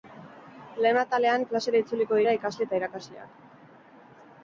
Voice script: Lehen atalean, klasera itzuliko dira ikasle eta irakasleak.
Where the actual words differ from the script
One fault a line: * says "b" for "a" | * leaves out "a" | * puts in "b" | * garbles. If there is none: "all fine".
all fine